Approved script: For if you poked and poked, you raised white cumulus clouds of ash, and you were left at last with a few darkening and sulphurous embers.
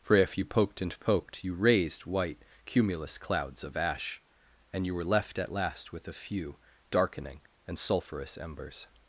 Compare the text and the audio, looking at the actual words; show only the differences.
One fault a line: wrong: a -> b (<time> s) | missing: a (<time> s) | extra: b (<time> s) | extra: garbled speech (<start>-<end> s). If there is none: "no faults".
no faults